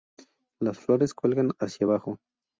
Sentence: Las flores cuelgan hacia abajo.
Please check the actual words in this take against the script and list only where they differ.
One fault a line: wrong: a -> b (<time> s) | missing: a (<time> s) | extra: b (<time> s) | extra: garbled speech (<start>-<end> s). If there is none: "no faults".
no faults